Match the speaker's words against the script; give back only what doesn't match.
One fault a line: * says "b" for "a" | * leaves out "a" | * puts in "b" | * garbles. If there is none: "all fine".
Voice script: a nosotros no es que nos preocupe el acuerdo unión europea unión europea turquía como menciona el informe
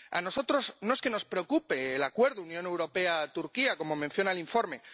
* leaves out "unión europea"